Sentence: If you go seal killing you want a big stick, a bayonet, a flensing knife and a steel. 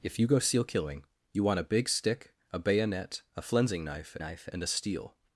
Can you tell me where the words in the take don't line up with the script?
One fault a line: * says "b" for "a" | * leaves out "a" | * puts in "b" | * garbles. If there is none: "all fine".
* puts in "knife"